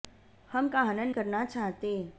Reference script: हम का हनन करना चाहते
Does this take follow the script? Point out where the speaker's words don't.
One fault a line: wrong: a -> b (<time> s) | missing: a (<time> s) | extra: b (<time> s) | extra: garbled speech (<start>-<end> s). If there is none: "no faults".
no faults